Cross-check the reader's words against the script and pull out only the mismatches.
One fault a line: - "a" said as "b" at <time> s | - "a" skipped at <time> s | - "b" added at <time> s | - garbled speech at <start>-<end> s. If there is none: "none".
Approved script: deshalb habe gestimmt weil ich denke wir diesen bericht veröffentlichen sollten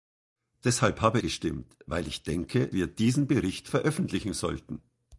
none